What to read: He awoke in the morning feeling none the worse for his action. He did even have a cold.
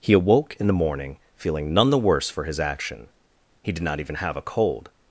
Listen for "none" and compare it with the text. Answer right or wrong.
right